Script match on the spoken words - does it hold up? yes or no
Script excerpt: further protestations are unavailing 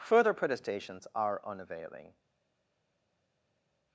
yes